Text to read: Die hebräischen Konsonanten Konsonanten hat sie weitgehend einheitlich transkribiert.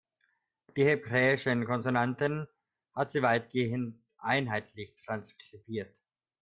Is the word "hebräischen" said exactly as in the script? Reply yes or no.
yes